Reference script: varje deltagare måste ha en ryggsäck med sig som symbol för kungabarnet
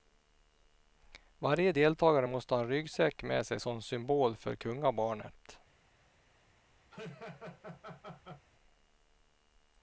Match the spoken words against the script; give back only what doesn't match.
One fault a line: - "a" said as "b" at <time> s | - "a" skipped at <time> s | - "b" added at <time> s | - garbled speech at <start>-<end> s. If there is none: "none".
none